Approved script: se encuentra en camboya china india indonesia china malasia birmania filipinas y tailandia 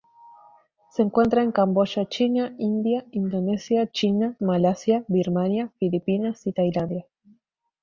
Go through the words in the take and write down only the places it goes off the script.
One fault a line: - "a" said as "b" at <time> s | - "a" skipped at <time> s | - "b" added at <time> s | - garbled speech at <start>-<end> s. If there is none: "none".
none